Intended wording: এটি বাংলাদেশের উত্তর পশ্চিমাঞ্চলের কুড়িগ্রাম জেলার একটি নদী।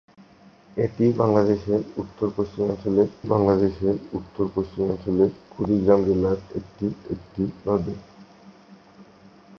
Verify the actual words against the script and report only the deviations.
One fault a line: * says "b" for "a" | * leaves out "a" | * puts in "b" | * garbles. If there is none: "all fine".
* puts in "বাংলাদেশের উত্তর পশ্চিমাঞ্চলের"
* puts in "একটি"